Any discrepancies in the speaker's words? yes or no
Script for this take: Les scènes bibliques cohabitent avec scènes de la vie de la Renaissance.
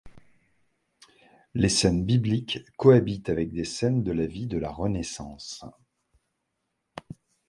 yes